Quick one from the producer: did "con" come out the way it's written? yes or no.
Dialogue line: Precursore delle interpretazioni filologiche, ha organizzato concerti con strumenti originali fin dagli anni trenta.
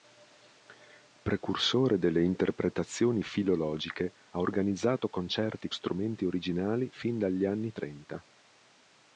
no